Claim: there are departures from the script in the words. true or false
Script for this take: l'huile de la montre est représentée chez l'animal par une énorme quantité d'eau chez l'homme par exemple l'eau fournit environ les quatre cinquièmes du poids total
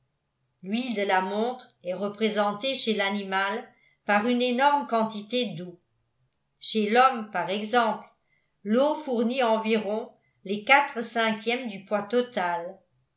false